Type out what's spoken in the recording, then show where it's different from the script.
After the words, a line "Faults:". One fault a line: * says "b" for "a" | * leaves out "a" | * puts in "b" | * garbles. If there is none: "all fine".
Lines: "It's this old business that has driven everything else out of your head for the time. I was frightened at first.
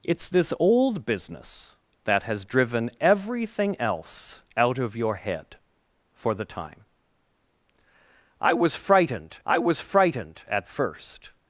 "It's this old business that has driven everything else out of your head for the time. I was frightened I was frightened at first.
Faults:
* puts in "I was frightened"